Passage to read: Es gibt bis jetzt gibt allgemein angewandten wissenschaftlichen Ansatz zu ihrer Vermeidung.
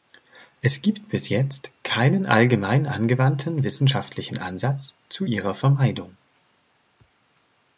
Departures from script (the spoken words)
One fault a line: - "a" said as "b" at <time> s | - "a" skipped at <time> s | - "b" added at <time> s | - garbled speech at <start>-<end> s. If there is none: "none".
- "gibt" said as "keinen" at 1.8 s